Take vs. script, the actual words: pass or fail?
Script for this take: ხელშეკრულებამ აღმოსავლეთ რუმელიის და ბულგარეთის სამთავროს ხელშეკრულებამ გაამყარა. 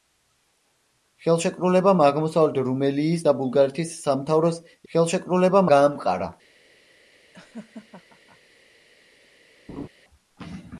pass